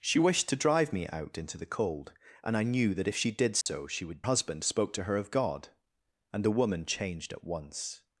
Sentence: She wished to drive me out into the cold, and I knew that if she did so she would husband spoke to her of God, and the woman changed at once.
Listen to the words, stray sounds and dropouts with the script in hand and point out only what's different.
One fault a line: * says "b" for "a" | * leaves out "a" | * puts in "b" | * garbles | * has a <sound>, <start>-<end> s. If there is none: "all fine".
* has a dropout, 3.6-3.7 s